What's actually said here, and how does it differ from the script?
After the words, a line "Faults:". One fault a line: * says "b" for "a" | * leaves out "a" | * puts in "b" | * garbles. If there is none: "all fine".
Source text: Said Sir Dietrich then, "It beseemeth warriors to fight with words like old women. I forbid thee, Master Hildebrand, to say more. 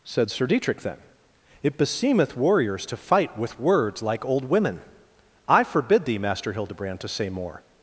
Said Sir Dietrich then, "It beseemeth warriors to fight with words like old women. I forbid thee, Master Hildebrand, to say more.
Faults:
all fine